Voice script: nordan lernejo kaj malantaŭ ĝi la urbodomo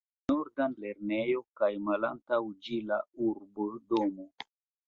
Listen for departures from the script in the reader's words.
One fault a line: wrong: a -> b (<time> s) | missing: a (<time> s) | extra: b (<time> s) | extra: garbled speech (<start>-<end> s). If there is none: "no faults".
no faults